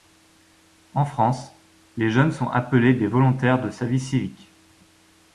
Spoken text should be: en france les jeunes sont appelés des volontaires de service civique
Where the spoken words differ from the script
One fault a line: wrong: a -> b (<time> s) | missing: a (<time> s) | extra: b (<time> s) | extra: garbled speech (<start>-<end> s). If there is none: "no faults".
no faults